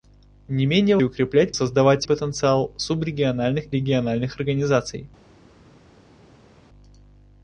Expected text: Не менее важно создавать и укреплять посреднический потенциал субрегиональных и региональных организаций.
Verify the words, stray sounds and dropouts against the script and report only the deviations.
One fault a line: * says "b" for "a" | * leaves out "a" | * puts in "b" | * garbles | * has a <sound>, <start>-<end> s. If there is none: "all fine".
* leaves out "важно создавать"
* says "создавать" for "посреднический"
* leaves out "и"